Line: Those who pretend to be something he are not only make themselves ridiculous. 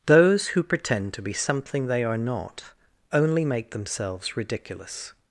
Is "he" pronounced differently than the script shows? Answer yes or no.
yes